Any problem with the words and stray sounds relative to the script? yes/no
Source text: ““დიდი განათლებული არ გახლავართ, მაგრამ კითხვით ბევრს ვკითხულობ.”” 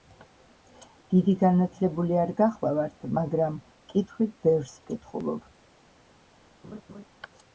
yes